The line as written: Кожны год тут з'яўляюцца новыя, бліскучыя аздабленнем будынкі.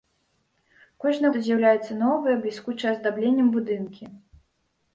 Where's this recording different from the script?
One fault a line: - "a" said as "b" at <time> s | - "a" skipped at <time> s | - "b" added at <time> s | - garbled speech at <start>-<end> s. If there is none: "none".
- "год" skipped at 1.3 s